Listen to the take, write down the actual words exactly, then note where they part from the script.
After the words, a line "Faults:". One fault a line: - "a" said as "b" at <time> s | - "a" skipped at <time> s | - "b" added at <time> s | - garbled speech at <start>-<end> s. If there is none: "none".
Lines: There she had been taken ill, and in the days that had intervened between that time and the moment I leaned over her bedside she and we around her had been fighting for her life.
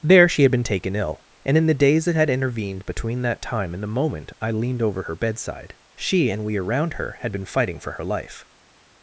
There she had been taken ill, and in the days that had intervened between that time and the moment I leaned over her bedside she and we around her had been fighting for her life.
Faults:
none